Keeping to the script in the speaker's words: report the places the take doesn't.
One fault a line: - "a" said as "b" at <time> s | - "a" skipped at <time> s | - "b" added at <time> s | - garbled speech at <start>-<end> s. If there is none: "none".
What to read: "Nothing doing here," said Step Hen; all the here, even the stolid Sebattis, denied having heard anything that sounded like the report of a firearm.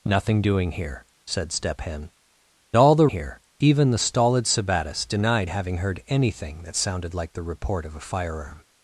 none